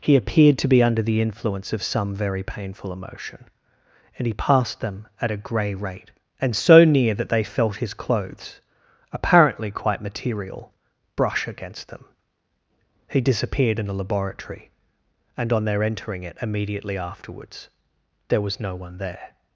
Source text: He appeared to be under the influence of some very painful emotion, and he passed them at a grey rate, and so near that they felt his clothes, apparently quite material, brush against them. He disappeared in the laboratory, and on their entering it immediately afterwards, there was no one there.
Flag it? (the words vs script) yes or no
no